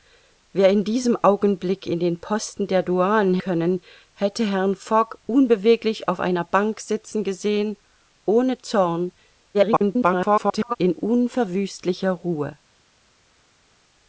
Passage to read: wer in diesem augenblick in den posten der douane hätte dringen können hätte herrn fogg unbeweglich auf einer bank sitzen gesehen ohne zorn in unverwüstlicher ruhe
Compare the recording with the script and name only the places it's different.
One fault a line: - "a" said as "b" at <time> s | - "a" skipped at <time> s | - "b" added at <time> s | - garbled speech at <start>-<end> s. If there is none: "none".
- "hätte dringen" skipped at 3.4 s
- garbled speech at 9.5-10.8 s